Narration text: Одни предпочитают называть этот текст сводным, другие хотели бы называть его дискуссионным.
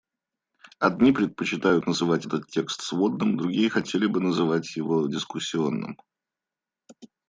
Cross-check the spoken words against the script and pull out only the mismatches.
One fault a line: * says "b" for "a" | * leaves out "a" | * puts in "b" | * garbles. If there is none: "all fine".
all fine